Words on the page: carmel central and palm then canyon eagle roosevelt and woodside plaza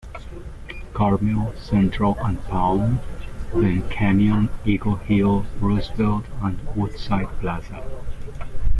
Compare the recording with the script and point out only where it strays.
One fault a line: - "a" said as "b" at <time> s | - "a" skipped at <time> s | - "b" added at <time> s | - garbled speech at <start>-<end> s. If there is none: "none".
- "hill" added at 5.0 s